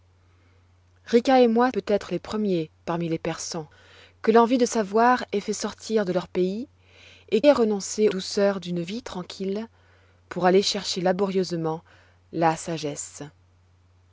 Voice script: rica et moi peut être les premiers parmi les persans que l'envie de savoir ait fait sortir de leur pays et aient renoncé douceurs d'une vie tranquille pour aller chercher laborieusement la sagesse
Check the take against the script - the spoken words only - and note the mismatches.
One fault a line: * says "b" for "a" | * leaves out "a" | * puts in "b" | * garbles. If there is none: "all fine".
all fine